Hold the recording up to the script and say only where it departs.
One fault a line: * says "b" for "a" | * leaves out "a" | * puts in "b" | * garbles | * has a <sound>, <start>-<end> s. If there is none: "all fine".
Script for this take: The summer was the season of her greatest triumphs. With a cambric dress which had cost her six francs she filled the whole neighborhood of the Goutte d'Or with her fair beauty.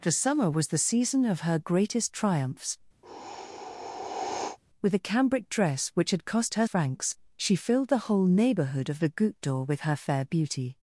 * has a sigh, 3.0-4.6 s
* leaves out "six"